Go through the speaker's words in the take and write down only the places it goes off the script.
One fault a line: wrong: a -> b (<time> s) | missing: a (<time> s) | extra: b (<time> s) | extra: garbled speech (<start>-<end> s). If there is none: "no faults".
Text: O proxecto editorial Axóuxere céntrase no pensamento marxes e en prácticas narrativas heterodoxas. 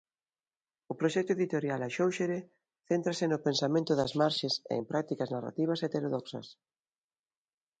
extra: das (4.0 s)